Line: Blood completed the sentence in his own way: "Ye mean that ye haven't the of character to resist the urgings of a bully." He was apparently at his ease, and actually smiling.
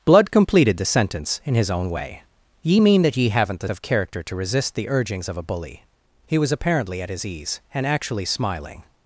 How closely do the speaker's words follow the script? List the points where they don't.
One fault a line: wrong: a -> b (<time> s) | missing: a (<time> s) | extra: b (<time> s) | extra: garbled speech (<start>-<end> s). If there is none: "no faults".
no faults